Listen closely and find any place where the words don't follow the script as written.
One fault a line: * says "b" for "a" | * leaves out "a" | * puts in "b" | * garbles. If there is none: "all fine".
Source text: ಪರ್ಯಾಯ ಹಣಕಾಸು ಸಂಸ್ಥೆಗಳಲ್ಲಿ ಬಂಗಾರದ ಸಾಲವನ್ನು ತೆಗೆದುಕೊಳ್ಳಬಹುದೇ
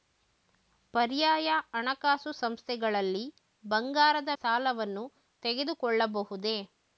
all fine